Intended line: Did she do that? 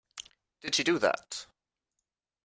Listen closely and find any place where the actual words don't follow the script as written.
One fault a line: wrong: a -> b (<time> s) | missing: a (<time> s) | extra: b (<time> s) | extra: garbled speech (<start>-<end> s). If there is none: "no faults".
no faults